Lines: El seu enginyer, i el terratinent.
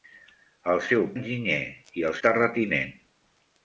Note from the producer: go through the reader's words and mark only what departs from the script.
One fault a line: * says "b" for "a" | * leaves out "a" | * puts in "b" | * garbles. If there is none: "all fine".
all fine